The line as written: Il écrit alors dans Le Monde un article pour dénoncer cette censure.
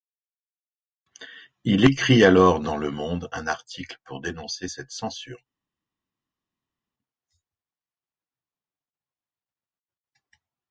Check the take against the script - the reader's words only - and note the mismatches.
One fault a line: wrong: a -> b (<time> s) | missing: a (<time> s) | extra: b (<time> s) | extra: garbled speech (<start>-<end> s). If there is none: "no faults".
no faults